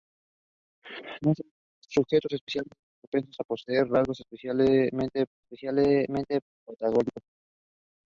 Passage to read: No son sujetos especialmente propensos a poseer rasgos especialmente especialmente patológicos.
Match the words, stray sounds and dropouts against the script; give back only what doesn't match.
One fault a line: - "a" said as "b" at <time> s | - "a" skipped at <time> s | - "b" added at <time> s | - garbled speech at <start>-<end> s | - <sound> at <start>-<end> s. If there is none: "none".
none